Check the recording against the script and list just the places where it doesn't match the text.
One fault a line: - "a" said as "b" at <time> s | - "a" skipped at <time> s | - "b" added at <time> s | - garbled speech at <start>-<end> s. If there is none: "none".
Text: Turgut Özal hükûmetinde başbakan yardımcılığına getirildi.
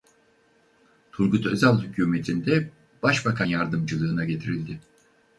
none